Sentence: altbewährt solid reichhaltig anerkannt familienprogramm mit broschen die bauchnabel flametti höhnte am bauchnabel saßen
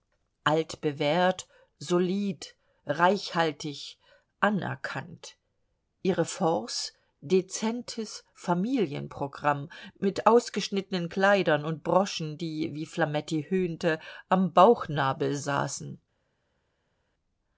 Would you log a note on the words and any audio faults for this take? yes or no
yes